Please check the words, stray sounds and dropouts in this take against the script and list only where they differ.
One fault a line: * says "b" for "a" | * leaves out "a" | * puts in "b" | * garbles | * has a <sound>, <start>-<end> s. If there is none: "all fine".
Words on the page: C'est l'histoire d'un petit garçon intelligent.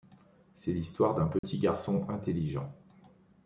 * has a dropout, 1.4-1.4 s